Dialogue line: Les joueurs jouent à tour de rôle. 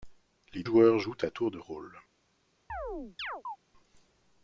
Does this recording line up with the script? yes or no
yes